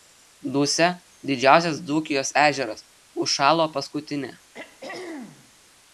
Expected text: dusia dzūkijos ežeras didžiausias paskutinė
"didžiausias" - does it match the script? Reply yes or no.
no